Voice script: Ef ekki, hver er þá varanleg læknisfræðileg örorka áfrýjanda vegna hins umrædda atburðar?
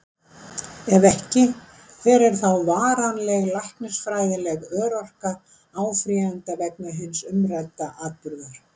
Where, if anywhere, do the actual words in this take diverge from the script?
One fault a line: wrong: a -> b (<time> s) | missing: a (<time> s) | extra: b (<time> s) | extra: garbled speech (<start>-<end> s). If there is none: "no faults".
no faults